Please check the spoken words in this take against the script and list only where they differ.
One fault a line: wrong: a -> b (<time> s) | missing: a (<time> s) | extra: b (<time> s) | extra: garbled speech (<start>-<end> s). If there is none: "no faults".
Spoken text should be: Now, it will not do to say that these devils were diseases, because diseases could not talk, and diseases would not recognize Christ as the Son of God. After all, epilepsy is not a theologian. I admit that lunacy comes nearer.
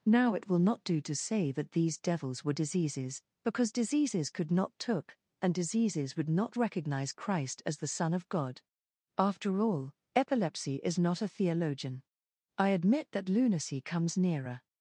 wrong: talk -> took (4.8 s)